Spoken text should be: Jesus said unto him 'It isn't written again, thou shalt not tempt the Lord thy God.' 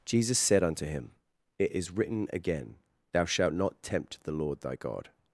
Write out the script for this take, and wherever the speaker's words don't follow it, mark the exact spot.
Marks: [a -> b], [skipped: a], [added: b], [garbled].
Jesus said unto him 'It [isn't -> is] written again, thou shalt not tempt the Lord thy God.'